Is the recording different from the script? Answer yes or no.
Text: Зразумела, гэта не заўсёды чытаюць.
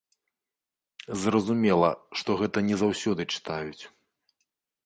yes